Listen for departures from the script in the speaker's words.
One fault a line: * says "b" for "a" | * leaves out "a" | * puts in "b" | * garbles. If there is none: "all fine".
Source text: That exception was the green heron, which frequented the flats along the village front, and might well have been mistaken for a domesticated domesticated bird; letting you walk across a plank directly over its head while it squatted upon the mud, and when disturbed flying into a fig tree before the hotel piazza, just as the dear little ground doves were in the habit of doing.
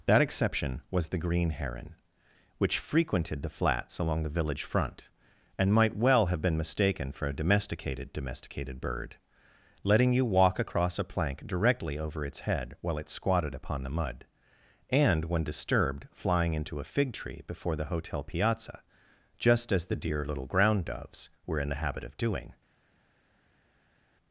all fine